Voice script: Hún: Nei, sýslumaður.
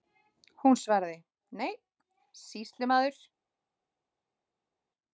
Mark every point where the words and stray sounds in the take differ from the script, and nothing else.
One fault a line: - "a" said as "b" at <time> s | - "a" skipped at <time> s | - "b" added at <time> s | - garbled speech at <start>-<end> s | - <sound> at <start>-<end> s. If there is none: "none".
- "svaraði" added at 0.8 s